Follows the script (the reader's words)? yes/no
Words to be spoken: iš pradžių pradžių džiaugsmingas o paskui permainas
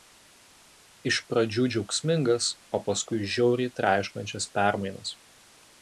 no